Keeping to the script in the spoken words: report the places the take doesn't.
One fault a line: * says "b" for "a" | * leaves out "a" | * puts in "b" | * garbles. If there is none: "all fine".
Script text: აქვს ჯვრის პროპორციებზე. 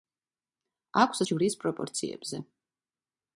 all fine